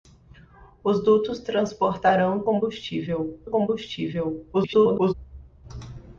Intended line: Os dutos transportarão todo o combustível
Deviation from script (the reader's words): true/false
true